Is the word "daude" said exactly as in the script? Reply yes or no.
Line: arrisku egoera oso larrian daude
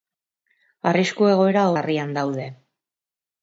yes